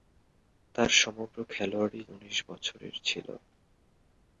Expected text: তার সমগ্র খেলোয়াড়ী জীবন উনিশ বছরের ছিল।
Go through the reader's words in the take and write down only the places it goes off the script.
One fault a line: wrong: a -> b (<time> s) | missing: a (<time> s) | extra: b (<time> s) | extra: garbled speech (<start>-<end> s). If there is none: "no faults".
missing: জীবন (2.0 s)